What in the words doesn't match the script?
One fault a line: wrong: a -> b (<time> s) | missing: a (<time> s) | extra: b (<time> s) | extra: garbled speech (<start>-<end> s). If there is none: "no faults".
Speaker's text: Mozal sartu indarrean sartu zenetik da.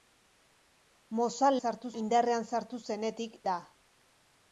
no faults